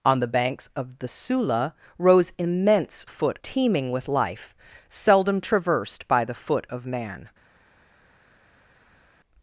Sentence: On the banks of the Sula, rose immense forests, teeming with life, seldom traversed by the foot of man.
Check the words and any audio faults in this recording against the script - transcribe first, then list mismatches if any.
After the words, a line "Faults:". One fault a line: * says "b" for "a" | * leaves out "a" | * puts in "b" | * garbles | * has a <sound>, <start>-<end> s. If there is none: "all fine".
On the banks of the Sula, rose immense foot, teeming with life, seldom traversed by the foot of man.
Faults:
* says "foot" for "forests"